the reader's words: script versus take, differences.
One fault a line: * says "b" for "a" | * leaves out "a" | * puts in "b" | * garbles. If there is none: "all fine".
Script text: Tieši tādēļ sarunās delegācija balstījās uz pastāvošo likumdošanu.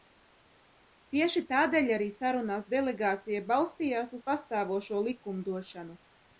* puts in "arī"